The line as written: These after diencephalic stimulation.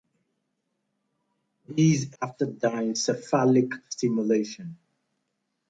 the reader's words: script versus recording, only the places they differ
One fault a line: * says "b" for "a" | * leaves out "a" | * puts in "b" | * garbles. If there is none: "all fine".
all fine